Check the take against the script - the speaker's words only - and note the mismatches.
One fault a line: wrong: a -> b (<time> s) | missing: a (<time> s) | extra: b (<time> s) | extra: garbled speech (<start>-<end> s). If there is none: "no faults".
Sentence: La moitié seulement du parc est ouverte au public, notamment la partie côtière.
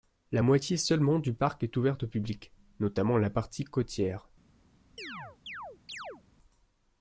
no faults